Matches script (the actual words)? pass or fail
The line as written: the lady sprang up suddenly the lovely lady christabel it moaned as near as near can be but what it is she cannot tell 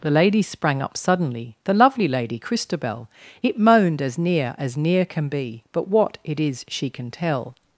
fail